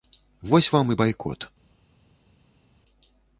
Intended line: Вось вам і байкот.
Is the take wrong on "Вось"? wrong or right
right